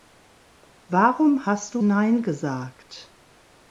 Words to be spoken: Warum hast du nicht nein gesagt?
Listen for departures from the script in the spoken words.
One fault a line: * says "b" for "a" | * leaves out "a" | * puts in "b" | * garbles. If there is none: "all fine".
* leaves out "nicht"